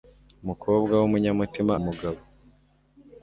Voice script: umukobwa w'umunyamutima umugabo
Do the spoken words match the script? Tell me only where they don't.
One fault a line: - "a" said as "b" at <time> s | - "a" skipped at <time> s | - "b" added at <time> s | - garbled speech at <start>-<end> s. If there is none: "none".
none